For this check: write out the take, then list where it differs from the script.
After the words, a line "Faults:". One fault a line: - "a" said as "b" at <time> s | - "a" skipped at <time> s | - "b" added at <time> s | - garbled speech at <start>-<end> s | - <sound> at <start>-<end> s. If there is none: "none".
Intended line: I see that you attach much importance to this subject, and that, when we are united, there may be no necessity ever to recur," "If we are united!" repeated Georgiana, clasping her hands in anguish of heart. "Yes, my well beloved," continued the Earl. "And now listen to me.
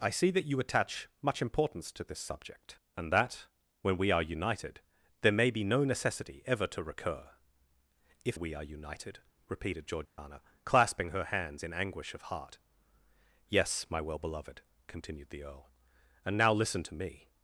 I see that you attach much importance to this subject, and that, when we are united, there may be no necessity ever to recur," "If we are united!" repeated Georgiana, clasping her hands in anguish of heart. "Yes, my well beloved," continued the Earl. "And now listen to me.
Faults:
- dropout at 10.1-10.2 s